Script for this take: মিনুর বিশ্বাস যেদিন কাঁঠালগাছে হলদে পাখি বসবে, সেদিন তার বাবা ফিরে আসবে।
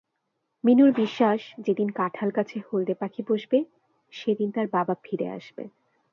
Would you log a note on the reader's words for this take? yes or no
no